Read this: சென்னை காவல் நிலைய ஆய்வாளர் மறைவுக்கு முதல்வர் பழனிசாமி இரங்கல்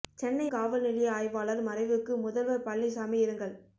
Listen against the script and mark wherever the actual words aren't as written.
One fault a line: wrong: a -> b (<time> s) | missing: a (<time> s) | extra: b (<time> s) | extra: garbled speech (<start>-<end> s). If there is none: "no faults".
no faults